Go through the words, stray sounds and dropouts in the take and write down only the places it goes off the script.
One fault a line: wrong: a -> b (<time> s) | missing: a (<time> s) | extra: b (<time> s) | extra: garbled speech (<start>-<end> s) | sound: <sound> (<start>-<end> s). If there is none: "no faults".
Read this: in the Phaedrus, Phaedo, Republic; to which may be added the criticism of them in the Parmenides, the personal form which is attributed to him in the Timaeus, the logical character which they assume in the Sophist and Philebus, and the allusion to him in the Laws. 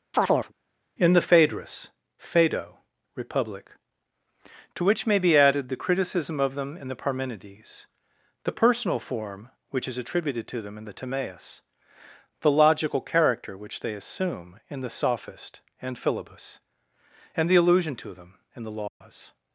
sound: chirp (0.1-0.5 s)
wrong: him -> them (10.6 s)
wrong: him -> them (18.1 s)
sound: dropout (18.9-19.0 s)